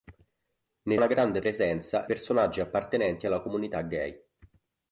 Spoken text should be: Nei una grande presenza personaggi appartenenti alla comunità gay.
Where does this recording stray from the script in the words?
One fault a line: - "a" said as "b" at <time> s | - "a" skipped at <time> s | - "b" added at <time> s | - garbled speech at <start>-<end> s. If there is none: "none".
none